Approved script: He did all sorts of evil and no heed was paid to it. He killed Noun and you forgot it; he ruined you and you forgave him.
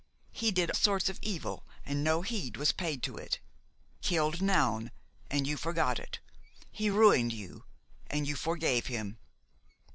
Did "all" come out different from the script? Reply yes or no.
yes